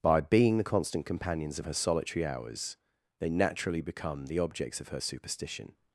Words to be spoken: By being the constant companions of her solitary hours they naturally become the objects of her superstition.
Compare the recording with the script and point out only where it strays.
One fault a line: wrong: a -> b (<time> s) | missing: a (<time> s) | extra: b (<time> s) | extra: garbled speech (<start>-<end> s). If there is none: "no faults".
no faults